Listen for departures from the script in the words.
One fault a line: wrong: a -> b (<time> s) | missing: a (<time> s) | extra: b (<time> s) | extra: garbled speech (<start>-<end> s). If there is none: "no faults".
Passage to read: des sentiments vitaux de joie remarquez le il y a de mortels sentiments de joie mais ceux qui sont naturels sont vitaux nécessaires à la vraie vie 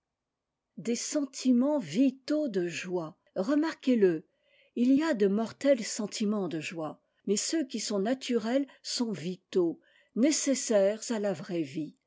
no faults